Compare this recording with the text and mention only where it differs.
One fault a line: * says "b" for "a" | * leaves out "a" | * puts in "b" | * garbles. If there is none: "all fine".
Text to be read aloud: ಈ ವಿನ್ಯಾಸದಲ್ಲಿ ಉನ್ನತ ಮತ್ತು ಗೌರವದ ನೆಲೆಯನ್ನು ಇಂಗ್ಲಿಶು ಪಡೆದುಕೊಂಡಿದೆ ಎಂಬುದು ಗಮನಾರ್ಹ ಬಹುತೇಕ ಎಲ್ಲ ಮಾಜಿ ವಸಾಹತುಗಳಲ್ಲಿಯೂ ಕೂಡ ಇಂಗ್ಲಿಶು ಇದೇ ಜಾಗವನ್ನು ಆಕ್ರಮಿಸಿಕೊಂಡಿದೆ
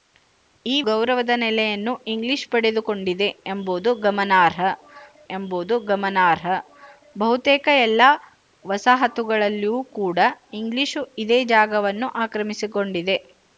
* leaves out "ವಿನ್ಯಾಸದಲ್ಲಿ ಉನ್ನತ ಮತ್ತು"
* puts in "ಎಂಬುದು ಗಮನಾರ್ಹ"
* leaves out "ಮಾಜಿ"